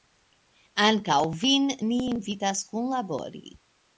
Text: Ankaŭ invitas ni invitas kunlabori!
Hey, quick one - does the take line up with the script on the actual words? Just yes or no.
no